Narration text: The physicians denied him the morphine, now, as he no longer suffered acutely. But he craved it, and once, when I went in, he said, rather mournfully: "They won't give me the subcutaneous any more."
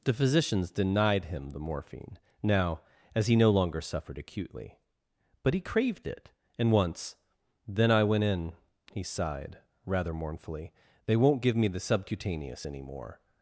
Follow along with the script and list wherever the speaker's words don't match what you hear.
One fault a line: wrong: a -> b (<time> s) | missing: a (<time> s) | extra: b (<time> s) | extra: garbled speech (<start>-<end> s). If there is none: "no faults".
wrong: when -> then (7.7 s)
wrong: said -> sighed (9.0 s)